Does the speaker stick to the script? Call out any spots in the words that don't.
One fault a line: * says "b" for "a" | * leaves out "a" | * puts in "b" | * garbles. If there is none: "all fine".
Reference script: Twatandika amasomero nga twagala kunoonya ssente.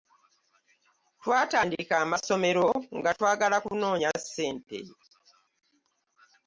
all fine